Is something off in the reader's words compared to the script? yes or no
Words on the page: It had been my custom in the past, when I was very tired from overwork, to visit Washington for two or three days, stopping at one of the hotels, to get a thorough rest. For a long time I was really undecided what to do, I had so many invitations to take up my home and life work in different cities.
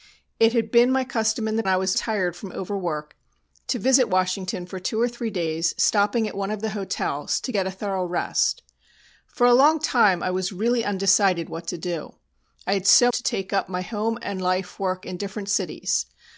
yes